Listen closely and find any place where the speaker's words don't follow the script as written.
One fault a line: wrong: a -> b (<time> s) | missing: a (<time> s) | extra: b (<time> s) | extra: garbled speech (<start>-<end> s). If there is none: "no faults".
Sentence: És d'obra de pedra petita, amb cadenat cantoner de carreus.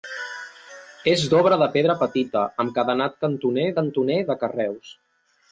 extra: cantoner (3.8 s)